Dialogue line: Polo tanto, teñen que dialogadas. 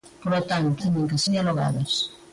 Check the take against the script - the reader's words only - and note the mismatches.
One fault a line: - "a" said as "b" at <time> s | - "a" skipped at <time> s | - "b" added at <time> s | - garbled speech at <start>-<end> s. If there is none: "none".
none